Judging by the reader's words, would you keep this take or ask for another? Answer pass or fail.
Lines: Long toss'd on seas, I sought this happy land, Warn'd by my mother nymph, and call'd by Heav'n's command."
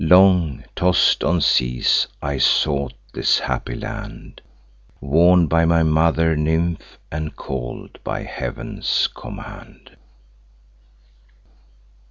pass